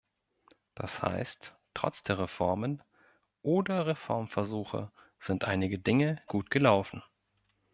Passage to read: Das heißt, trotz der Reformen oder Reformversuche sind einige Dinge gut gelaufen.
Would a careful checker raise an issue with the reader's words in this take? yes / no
no